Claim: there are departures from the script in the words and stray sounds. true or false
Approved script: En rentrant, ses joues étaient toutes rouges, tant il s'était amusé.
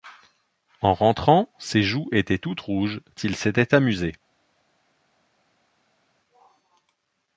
true